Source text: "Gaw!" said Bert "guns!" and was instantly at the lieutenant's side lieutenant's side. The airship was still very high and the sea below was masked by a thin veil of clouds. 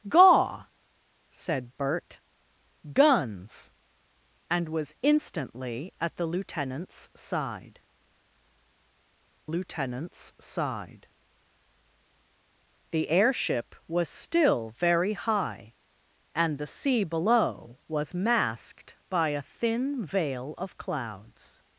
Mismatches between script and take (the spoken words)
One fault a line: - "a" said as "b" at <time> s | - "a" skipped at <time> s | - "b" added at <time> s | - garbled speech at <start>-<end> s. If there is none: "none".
none